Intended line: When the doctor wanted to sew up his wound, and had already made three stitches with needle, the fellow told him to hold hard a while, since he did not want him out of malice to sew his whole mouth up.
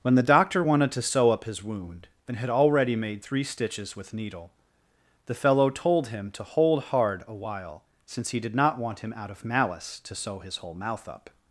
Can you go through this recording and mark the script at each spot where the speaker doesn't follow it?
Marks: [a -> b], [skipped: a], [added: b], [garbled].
When the doctor wanted to sew up his wound, and had already made three stitches with needle, the fellow told him to hold hard a while, since he did not want him out of malice to sew his whole mouth up.